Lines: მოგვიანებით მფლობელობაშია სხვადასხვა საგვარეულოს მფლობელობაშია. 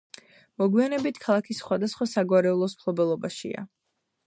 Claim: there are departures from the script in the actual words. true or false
true